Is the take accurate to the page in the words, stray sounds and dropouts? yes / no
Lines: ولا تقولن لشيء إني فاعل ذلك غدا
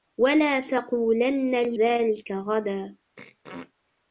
no